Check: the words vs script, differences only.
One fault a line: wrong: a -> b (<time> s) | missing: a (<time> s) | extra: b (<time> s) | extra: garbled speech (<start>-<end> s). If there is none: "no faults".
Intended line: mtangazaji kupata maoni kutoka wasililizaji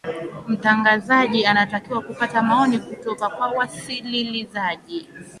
extra: anatakiwa (1.4 s)
extra: kwa (3.3 s)